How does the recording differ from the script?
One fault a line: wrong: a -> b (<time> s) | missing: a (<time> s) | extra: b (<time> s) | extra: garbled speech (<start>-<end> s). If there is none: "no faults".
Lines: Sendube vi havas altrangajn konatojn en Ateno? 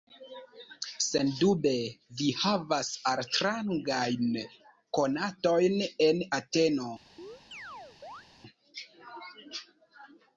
no faults